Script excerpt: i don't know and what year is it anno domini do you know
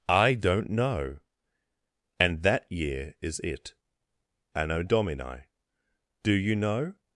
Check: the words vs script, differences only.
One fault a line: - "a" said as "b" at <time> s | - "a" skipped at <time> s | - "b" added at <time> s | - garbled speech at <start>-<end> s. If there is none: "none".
- "what" said as "that" at 2.4 s